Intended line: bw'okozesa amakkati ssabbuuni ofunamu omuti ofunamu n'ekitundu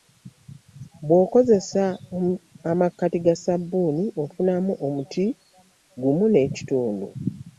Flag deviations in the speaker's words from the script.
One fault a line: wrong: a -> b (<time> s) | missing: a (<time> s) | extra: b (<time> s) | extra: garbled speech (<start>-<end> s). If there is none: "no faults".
extra: ga (3.2 s)
wrong: ofunamu -> gumu (6.0 s)